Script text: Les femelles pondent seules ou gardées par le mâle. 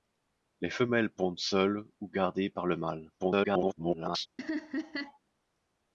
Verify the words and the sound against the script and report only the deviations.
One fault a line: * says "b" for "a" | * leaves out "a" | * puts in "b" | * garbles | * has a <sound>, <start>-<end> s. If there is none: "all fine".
* garbles
* has a laugh, 4.4-5.2 s